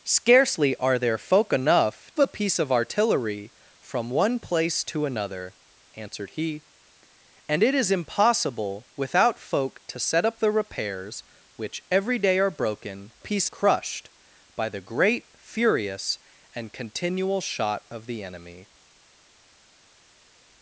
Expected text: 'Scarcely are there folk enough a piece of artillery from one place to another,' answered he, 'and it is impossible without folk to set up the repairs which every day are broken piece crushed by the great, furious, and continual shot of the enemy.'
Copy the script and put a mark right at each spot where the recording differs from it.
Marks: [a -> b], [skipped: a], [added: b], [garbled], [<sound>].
'Scarcely are there folk enough a piece of artillery from one place to another,' answered he, 'and it is impossible without folk to set up the repairs which every day are broken piece crushed by the great, furious, and continual shot of the enemy.'